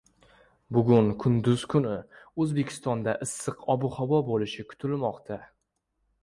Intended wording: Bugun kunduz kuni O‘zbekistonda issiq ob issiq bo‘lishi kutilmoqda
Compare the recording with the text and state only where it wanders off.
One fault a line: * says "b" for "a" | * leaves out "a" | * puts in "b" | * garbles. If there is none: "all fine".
* says "havo" for "issiq"